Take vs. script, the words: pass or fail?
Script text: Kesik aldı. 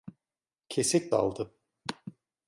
pass